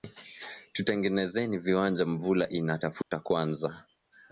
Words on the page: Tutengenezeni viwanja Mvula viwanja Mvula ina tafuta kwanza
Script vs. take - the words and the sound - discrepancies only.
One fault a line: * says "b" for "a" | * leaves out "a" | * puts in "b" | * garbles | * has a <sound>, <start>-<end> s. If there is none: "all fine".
* leaves out "viwanja Mvula"
* has a dropout, 3.0-3.1 s